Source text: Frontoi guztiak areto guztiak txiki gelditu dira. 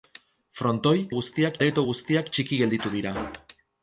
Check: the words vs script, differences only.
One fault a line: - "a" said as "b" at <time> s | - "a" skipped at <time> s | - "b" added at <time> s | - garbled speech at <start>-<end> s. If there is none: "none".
none